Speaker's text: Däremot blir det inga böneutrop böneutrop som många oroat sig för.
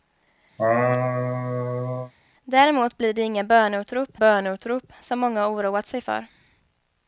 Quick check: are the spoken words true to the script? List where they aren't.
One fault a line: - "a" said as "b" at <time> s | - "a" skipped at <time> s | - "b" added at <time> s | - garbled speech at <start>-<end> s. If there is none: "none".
none